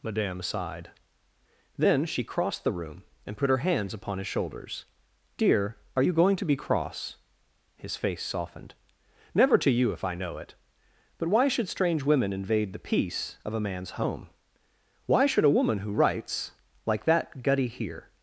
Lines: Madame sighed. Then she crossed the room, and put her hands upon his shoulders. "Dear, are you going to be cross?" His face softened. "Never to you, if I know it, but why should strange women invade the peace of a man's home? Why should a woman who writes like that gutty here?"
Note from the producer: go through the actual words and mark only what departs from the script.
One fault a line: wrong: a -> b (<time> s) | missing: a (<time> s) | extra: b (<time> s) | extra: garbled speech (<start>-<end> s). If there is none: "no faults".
no faults